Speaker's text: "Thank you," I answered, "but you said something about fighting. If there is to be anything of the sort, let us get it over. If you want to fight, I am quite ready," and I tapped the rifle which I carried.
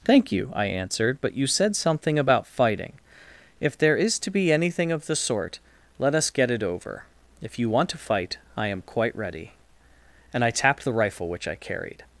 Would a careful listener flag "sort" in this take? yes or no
no